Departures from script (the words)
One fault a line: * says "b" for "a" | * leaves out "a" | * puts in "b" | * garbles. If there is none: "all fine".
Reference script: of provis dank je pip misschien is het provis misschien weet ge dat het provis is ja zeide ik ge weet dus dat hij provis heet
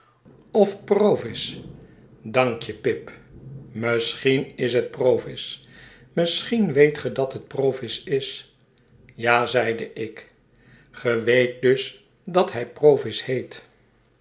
all fine